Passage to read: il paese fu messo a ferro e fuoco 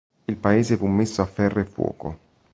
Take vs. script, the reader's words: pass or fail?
pass